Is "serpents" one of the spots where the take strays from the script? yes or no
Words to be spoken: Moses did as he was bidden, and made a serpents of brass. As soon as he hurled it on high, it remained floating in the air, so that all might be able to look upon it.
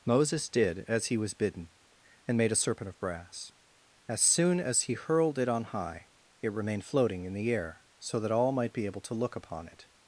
yes